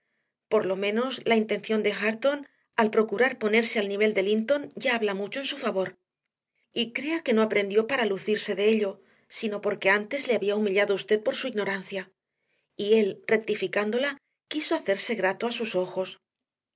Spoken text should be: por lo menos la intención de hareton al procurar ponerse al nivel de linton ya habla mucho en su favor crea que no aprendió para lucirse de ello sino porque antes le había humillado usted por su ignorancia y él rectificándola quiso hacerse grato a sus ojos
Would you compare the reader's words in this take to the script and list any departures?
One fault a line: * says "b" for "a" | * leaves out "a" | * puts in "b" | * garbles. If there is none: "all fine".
* puts in "y"